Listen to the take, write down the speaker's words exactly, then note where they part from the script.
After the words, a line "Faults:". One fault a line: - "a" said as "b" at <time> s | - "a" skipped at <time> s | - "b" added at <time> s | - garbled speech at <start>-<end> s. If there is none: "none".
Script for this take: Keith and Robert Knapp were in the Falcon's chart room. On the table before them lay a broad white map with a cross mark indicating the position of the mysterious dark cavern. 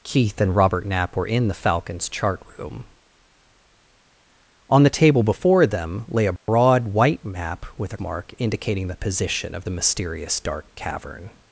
Keith and Robert Knapp were in the Falcon's chart room. On the table before them lay a broad white map with a mark indicating the position of the mysterious dark cavern.
Faults:
- "cross" skipped at 8.0 s